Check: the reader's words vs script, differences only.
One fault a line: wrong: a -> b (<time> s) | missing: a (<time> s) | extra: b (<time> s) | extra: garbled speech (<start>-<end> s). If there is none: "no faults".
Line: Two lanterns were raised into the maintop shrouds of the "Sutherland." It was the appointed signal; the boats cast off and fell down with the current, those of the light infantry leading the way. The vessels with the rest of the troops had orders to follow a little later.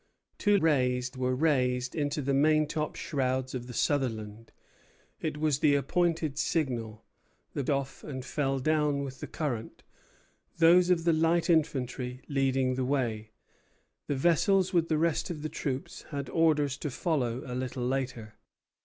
wrong: lanterns -> raised (0.6 s)
missing: boats cast (7.6 s)